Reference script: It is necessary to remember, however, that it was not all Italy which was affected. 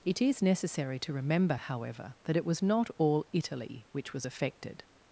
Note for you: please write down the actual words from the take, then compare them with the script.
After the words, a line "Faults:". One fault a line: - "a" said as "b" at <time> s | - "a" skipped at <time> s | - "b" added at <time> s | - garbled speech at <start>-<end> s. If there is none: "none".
It is necessary to remember, however, that it was not all Italy which was affected.
Faults:
none